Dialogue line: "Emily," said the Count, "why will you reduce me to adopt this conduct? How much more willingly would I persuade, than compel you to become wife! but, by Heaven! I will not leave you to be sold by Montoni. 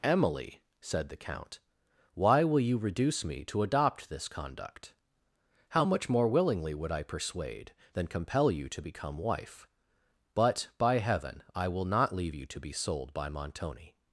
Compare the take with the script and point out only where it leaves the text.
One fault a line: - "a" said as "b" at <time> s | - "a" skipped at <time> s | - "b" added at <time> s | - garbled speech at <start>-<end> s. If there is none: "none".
none